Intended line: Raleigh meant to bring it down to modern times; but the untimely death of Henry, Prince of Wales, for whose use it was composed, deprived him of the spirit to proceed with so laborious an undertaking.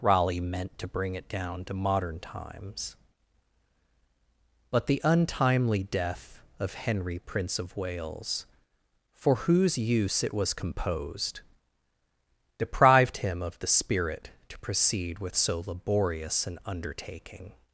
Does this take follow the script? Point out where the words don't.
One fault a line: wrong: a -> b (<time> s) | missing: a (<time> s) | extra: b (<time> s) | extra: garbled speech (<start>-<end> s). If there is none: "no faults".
no faults